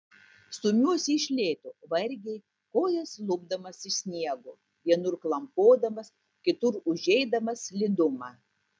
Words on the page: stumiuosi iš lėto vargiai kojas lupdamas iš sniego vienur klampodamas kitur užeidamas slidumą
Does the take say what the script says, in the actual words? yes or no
yes